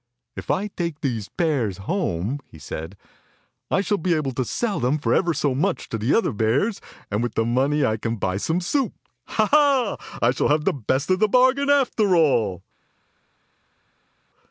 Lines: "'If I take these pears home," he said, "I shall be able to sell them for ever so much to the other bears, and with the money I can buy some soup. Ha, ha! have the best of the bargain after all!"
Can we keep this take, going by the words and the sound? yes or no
no